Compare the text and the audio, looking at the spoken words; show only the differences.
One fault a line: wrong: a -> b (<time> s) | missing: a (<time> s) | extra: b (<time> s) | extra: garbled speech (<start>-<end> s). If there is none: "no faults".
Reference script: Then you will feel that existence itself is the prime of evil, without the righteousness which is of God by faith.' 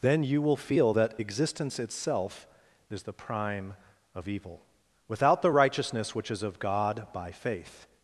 no faults